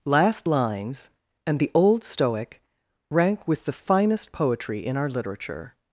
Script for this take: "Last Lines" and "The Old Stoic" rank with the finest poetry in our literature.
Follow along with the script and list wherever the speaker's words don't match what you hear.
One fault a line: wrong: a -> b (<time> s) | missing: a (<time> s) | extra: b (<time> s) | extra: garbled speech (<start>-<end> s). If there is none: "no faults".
no faults